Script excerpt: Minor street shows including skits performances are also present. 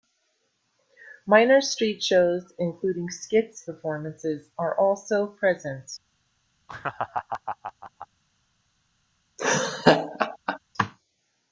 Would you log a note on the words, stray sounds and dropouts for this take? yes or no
yes